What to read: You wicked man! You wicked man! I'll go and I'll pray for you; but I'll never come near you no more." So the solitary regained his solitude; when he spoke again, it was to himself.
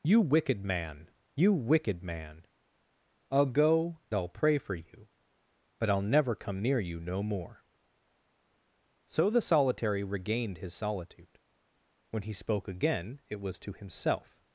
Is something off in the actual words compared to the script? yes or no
yes